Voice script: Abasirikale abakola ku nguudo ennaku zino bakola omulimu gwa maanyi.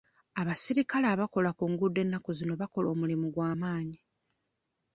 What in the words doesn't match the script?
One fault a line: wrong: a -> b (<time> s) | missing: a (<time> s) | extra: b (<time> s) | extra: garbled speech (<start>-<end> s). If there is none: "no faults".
no faults